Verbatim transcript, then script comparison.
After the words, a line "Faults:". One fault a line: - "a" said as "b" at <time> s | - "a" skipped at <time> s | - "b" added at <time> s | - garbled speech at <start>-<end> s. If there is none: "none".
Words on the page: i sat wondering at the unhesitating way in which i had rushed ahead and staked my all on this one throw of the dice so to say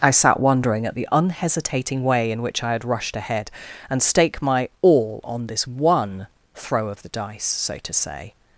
i sat wondering at the unhesitating way in which i had rushed ahead and stake my all on this one throw of the dice so to say
Faults:
- "staked" said as "stake" at 4.0 s